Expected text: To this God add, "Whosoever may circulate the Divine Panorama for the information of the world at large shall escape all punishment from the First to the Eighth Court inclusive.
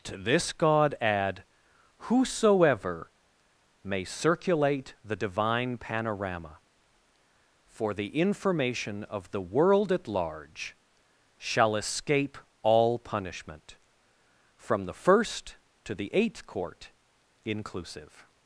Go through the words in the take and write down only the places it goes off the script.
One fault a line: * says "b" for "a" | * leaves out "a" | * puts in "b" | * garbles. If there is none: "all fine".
all fine